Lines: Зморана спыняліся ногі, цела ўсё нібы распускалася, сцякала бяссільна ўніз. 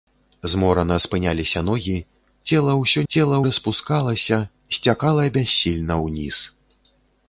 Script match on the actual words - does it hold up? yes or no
no